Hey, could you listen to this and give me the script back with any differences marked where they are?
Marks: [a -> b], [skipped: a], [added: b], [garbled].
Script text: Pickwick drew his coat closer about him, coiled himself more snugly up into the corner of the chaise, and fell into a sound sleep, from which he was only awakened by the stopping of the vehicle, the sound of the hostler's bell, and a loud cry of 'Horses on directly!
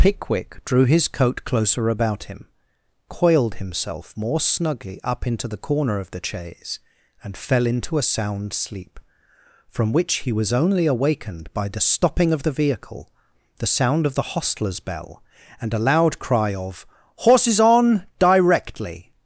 Pickwick drew his coat closer about him, coiled himself more snugly up into the corner of the chaise, and fell into a sound sleep, from which he was only awakened by the stopping of the vehicle, the sound of the hostler's bell, and a loud cry of 'Horses on directly!